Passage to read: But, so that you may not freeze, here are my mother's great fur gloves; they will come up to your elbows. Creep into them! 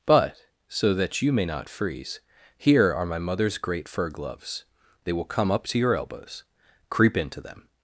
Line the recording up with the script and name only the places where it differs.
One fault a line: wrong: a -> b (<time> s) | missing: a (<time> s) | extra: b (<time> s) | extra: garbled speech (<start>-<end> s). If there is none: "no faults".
no faults